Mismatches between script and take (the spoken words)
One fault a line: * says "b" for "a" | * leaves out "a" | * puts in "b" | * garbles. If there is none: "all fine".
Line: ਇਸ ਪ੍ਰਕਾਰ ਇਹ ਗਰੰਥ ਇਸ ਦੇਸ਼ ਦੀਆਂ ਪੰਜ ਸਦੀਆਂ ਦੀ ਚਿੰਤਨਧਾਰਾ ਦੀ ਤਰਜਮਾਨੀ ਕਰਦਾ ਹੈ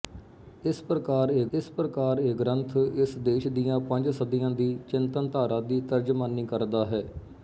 * puts in "ਇਸ ਪ੍ਰਕਾਰ ਇਹ"